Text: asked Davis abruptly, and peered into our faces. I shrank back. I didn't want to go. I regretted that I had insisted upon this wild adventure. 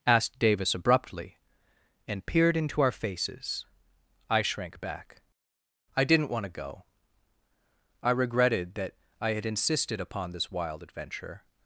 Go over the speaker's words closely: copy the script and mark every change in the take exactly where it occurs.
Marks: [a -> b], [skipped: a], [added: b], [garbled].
asked Davis abruptly, and peered into our faces. I shrank back. I didn't want to go. I regretted that I had insisted upon this wild adventure.